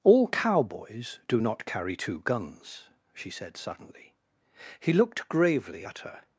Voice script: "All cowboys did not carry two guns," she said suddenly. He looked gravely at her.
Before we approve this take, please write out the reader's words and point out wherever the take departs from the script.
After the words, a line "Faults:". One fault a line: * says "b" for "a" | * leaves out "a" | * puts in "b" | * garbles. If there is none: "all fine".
"All cowboys do not carry two guns," she said suddenly. He looked gravely at her.
Faults:
* says "do" for "did"